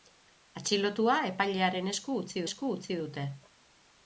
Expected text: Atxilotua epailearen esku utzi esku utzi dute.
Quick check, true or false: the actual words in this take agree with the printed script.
true